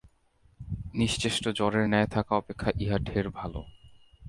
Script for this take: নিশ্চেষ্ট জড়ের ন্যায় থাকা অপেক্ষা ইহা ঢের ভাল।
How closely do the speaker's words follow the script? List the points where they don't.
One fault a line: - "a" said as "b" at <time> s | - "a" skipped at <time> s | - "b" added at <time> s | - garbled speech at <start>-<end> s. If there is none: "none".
none